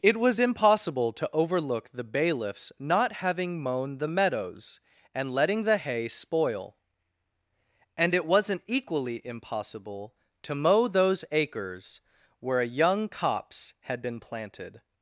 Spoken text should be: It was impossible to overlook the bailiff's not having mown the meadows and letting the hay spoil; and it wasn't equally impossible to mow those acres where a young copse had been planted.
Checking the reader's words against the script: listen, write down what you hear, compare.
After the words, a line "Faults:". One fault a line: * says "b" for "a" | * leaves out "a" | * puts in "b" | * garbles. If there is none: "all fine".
It was impossible to overlook the bailiff's not having mown the meadows and letting the hay spoil; and it wasn't equally impossible to mow those acres where a young copse had been planted.
Faults:
all fine